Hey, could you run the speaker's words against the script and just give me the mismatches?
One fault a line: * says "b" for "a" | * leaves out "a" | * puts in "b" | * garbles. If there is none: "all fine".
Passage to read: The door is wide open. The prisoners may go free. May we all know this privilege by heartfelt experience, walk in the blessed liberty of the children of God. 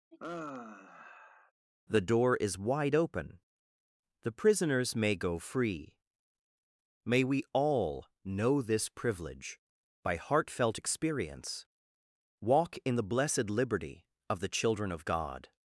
all fine